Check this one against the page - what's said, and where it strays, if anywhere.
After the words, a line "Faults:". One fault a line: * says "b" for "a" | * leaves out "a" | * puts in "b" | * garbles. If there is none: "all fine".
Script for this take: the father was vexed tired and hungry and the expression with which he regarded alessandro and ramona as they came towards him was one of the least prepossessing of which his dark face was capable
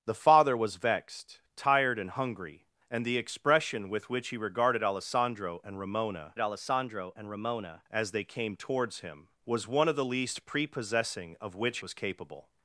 the father was vexed tired and hungry and the expression with which he regarded alessandro and ramona alessandro and ramona as they came towards him was one of the least prepossessing of which was capable
Faults:
* puts in "alessandro and ramona"
* leaves out "his dark face"